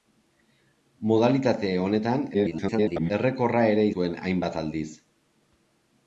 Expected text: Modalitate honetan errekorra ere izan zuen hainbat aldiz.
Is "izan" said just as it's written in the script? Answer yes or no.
no